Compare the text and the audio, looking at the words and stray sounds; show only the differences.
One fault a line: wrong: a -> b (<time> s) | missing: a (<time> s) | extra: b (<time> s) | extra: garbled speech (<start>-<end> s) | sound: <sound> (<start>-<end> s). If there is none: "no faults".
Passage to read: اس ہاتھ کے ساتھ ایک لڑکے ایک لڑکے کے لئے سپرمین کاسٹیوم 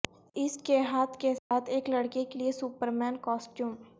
extra: کے (0.6 s)
sound: dropout (1.4-1.5 s)
missing: ایک لڑکے (2.2 s)